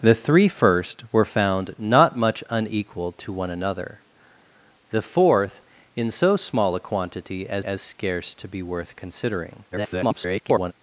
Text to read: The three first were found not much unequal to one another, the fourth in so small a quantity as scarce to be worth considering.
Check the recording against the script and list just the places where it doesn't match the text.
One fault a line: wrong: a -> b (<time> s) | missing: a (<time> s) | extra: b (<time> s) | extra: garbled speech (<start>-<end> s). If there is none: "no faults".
extra: as (7.6 s)
extra: garbled speech (9.7-10.7 s)